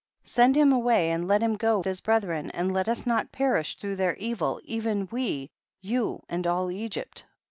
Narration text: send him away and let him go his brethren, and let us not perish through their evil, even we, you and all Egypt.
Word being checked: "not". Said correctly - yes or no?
yes